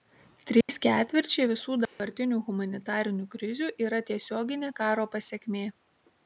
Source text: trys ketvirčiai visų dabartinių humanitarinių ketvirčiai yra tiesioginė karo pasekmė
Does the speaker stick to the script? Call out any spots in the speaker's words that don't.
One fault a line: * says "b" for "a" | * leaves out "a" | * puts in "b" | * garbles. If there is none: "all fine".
* says "krizių" for "ketvirčiai"